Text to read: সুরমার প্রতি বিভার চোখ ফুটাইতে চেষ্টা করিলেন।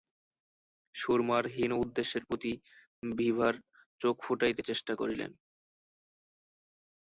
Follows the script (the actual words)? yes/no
no